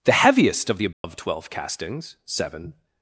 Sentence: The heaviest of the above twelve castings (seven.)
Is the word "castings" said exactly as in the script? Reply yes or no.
yes